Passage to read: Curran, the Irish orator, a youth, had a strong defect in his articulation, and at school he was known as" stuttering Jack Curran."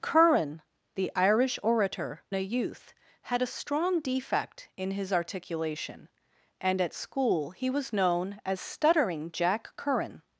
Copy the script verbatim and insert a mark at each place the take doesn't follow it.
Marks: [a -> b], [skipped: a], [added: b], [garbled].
Curran, the Irish orator, a youth, had a strong defect in his articulation, and at school he was known as" stuttering Jack Curran."